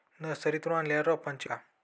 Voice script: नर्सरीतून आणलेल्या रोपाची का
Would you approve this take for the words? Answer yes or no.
yes